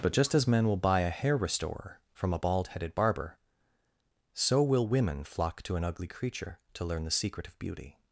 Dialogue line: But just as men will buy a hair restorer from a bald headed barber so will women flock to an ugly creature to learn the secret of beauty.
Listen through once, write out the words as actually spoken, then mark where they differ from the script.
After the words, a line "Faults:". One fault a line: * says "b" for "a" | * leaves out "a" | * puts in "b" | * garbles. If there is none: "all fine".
But just as men will buy a hair restorer from a bald headed barber so will women flock to an ugly creature to learn the secret of beauty.
Faults:
all fine